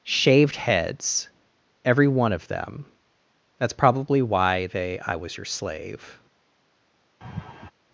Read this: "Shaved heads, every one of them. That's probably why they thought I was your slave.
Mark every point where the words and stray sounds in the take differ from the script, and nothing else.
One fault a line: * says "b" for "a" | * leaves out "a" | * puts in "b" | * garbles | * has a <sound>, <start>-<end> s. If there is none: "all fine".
* leaves out "thought"
* has a laugh, 7.2-7.7 s